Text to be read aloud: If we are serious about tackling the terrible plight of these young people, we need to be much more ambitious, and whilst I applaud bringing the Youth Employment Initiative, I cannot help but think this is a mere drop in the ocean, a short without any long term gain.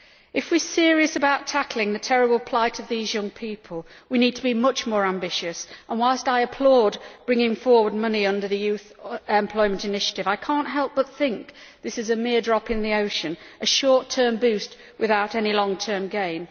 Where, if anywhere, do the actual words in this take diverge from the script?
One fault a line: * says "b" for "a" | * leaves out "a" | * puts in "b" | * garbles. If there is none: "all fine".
* puts in "forward money under"
* puts in "term boost"